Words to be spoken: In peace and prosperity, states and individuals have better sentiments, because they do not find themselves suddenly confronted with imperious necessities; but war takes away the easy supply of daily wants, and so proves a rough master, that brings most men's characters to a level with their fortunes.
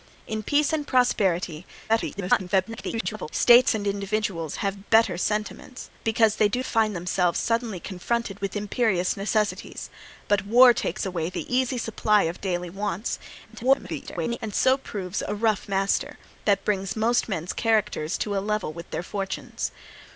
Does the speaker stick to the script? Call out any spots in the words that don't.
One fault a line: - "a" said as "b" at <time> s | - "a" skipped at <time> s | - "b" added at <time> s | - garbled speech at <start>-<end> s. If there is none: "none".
- garbled speech at 1.9-3.3 s
- "not" skipped at 6.6 s
- garbled speech at 13.5-14.4 s